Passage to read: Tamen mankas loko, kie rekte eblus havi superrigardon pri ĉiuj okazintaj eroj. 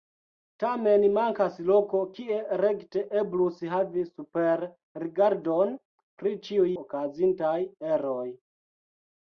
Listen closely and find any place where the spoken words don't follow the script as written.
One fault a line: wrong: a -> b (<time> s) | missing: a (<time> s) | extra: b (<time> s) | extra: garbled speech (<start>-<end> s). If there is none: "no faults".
no faults